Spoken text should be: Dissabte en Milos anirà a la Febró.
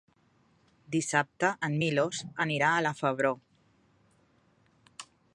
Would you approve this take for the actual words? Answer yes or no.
yes